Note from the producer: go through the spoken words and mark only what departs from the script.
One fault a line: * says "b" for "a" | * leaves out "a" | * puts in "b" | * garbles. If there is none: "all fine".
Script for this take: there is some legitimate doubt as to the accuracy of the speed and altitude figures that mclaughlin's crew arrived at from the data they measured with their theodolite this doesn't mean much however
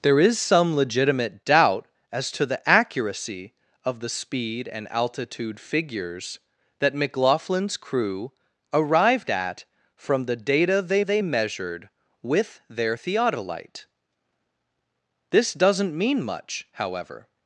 * puts in "they"